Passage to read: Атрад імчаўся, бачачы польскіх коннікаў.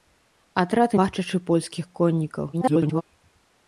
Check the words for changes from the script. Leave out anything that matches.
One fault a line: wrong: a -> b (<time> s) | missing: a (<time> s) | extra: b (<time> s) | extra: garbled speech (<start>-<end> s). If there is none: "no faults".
missing: імчаўся (0.9 s)
extra: garbled speech (2.5-3.0 s)